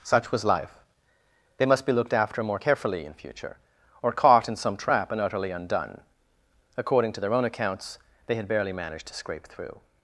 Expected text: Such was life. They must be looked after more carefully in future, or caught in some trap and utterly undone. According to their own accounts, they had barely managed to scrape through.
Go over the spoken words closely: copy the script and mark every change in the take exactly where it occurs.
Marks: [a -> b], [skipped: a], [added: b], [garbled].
Such was life. They must be looked after more carefully in future, or caught in some trap and utterly undone. According to their own accounts, they had barely managed to scrape through.